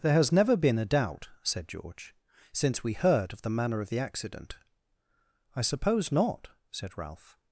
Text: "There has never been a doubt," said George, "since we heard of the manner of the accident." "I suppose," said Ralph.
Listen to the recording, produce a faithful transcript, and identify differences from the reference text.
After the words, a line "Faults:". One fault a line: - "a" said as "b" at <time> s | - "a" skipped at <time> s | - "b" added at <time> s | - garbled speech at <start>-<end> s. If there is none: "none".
"There has never been a doubt," said George, "since we heard of the manner of the accident." "I suppose not," said Ralph.
Faults:
- "not" added at 6.1 s